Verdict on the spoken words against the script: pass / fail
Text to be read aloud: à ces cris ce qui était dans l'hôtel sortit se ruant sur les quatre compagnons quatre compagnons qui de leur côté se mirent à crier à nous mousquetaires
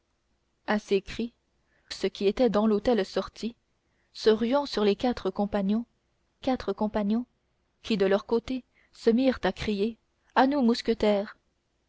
pass